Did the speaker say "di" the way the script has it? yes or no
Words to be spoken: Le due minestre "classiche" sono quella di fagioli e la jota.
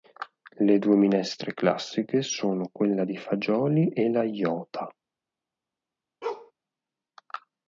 yes